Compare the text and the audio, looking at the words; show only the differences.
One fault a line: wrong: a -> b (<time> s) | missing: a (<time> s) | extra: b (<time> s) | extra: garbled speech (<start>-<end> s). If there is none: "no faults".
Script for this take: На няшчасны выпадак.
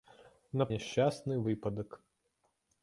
no faults